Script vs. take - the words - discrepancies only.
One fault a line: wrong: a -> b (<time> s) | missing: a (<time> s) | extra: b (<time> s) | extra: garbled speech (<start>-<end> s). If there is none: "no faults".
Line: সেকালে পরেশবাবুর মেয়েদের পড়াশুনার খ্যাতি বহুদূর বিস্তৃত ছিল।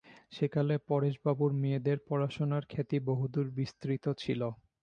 no faults